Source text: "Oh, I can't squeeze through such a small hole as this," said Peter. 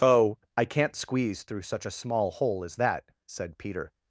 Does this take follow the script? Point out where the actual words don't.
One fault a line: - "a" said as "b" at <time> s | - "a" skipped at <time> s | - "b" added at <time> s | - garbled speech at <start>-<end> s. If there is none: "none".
- "this" said as "that" at 2.8 s